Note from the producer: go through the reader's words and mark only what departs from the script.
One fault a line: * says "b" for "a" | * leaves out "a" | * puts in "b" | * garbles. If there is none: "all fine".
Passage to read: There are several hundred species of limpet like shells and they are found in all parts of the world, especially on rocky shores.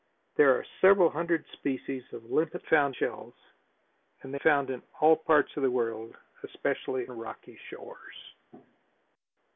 * says "found" for "like"
* leaves out "are"
* leaves out "on"